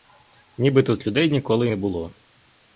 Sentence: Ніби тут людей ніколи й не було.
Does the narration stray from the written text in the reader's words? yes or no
no